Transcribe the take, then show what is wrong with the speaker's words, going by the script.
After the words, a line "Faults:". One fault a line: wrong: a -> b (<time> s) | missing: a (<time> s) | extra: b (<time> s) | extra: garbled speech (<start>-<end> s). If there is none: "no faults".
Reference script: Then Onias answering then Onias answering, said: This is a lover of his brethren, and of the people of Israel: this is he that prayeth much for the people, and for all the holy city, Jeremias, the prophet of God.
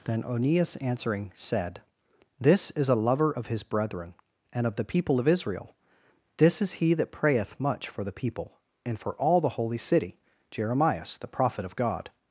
Then Onias answering, said: This is a lover of his brethren, and of the people of Israel: this is he that prayeth much for the people, and for all the holy city, Jeremias, the prophet of God.
Faults:
missing: then Onias answering (1.3 s)